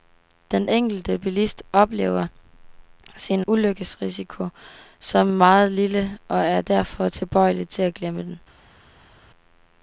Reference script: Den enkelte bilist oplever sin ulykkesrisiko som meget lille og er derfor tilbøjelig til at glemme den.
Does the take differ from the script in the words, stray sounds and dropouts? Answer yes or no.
no